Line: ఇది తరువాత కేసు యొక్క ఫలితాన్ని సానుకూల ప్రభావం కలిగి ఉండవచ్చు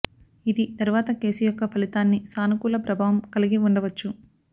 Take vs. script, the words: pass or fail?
pass